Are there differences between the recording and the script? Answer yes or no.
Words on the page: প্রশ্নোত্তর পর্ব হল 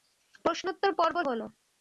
no